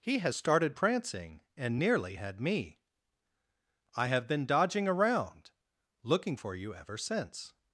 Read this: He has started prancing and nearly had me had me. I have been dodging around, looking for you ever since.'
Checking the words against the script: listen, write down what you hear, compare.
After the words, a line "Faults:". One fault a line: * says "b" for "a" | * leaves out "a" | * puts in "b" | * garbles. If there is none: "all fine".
He has started prancing and nearly had me. I have been dodging around, looking for you ever since.'
Faults:
* leaves out "had me"